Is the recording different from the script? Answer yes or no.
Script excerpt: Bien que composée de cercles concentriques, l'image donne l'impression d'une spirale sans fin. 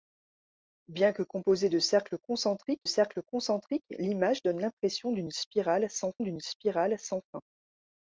yes